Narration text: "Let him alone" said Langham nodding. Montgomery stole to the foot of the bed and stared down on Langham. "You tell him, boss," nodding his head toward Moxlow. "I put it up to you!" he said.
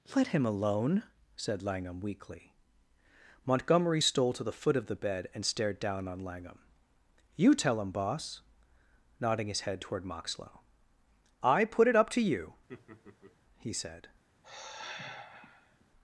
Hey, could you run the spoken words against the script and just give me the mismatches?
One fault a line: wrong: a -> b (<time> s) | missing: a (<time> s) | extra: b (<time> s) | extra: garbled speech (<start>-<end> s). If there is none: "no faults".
wrong: nodding -> weakly (2.0 s)